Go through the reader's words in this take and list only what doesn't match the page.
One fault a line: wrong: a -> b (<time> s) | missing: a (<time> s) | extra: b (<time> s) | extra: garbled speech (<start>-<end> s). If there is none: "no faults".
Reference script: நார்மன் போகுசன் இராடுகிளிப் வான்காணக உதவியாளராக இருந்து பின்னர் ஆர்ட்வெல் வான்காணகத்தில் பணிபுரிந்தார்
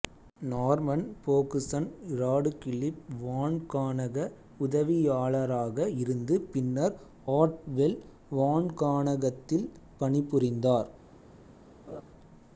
no faults